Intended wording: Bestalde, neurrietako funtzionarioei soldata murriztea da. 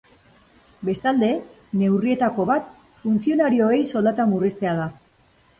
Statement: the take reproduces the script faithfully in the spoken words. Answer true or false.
false